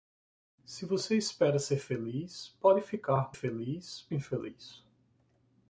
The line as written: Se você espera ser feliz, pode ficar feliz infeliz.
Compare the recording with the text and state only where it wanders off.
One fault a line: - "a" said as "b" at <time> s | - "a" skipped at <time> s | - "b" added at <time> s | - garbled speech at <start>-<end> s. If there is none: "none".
none